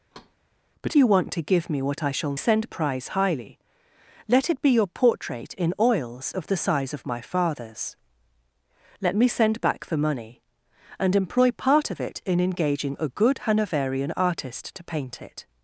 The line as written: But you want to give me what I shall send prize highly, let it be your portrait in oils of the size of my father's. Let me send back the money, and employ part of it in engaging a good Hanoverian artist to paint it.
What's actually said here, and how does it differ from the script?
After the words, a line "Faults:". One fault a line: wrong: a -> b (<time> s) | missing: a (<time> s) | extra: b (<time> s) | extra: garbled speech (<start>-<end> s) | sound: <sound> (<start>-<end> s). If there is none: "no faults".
But you want to give me what I shall send prize highly, let it be your portrait in oils of the size of my father's. Let me send back the money, and employ part of it in engaging a good Hanoverian artist to paint it.
Faults:
sound: thud (0.1-0.4 s)